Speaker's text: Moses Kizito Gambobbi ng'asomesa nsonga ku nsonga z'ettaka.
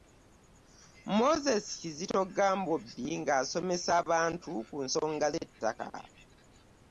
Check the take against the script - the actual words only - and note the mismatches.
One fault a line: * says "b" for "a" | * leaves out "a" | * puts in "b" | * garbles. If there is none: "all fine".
* says "abantu" for "nsonga"